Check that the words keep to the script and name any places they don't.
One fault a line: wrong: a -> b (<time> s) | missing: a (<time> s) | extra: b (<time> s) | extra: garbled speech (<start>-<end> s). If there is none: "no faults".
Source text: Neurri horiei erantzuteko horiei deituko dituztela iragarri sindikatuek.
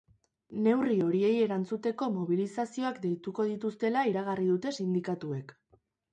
wrong: horiei -> mobilizazioak (2.1 s)
extra: dute (4.6 s)